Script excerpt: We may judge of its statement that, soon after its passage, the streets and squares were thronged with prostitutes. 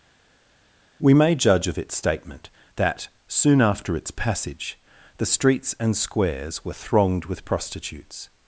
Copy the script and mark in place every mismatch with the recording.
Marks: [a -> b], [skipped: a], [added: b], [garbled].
We may judge of its statement that, soon after its passage, the streets and squares were thronged with prostitutes.